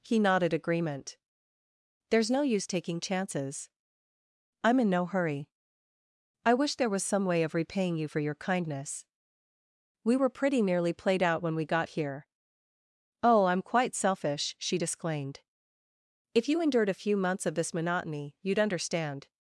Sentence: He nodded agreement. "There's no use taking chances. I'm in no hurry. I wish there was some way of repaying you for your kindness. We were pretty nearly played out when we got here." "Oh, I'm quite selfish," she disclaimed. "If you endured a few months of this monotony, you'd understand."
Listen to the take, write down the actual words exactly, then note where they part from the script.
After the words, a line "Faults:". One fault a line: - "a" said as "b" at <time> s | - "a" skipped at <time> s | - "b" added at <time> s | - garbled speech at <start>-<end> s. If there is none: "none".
He nodded agreement. "There's no use taking chances. I'm in no hurry. I wish there was some way of repaying you for your kindness. We were pretty nearly played out when we got here." "Oh, I'm quite selfish," she disclaimed. "If you endured a few months of this monotony, you'd understand."
Faults:
none